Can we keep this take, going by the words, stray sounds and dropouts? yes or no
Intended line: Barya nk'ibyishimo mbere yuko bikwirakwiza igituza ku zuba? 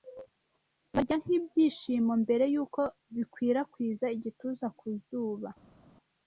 yes